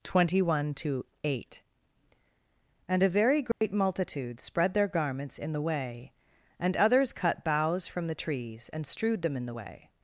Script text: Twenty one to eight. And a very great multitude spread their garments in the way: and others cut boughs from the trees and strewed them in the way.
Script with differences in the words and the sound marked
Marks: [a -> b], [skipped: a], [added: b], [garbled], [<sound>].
Twenty one to eight. And a very great [dropout] multitude spread their garments in the way: and others cut boughs from the trees and strewed them in the way.